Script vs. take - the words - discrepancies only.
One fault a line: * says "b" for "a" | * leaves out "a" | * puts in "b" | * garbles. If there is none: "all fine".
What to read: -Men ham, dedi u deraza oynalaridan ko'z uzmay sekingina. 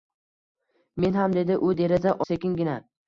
* leaves out "oynalaridan ko'z uzmay"